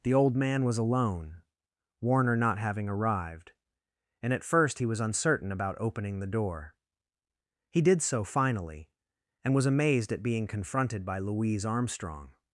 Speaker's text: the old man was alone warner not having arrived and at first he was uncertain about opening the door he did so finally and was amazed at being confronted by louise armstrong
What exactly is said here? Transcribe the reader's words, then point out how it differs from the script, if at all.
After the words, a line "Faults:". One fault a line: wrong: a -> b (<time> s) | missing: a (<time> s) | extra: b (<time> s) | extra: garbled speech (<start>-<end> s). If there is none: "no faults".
the old man was alone warner not having arrived and at first he was uncertain about opening the door he did so finally and was amazed at being confronted by louise armstrong
Faults:
no faults